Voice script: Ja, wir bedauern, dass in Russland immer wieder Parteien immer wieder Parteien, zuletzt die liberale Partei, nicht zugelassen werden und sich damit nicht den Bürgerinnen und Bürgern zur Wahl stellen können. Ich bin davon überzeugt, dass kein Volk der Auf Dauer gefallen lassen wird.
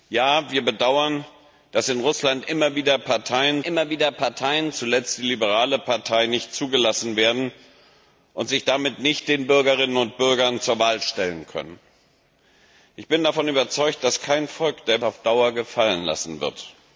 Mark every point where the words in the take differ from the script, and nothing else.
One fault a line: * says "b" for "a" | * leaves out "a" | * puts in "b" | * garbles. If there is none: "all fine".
all fine